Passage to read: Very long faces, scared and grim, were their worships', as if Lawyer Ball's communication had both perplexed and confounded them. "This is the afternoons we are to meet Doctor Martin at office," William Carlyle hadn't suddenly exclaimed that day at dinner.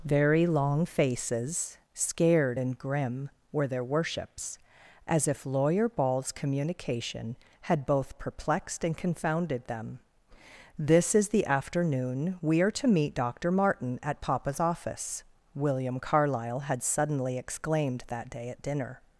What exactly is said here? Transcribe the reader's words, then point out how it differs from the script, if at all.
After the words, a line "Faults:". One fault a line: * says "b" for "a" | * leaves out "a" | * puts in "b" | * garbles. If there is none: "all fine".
Very long faces, scared and grim, were their worships', as if Lawyer Ball's communication had both perplexed and confounded them. "This is the afternoon we are to meet Doctor Martin at papa's office," William Carlyle had suddenly exclaimed that day at dinner.
Faults:
* says "afternoon" for "afternoons"
* puts in "papa's"
* says "had" for "hadn't"